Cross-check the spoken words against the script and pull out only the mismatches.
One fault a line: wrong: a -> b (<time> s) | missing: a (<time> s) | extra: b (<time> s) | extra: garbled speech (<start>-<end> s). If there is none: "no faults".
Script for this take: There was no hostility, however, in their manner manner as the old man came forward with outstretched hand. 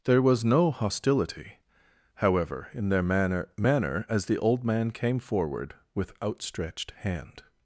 no faults